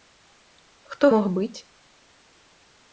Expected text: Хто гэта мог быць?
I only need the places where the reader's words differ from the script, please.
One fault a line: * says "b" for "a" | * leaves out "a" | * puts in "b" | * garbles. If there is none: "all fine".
* leaves out "гэта"